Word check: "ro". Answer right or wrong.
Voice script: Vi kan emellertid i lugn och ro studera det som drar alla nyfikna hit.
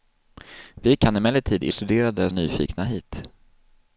wrong